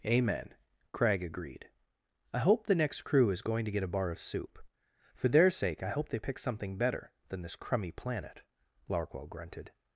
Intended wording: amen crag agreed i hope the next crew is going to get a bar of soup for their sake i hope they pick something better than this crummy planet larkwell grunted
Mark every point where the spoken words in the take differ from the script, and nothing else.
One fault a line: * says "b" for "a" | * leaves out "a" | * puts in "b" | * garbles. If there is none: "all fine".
all fine